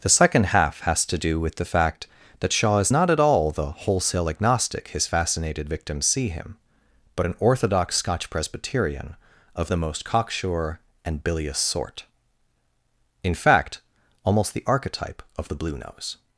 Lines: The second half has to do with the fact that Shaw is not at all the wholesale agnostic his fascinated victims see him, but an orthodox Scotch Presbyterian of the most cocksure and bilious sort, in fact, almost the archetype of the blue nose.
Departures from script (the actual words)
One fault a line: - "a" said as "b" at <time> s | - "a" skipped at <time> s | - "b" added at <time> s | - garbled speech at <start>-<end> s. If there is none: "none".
none